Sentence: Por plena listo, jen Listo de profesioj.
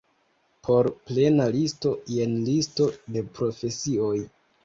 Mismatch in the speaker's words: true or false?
false